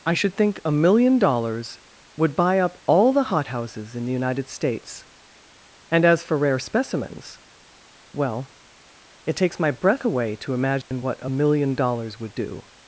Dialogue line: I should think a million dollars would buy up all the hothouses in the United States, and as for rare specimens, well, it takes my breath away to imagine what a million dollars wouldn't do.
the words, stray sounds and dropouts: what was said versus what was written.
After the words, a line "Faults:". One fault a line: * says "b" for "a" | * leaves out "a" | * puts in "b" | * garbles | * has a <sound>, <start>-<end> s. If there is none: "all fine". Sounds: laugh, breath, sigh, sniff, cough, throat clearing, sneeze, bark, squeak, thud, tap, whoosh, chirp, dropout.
I should think a million dollars would buy up all the hothouses in the United States, and as for rare specimens, well, it takes my breath away to imagine what a million dollars would do.
Faults:
* has a dropout, 10.8-10.9 s
* says "would" for "wouldn't"